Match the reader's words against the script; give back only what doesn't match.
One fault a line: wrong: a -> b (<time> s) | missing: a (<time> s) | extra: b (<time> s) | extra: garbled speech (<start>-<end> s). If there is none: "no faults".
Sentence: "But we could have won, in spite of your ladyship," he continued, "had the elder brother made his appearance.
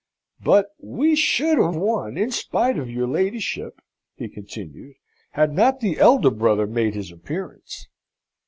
wrong: could -> should (1.2 s)
extra: not (5.5 s)